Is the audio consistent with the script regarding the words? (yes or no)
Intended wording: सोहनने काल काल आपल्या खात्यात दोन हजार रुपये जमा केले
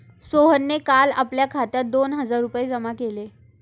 no